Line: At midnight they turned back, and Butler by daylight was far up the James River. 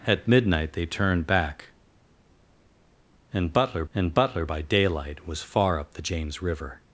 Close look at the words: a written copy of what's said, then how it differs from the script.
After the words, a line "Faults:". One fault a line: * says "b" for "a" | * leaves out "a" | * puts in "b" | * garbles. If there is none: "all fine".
At midnight they turned back, and Butler and Butler by daylight was far up the James River.
Faults:
* puts in "and Butler"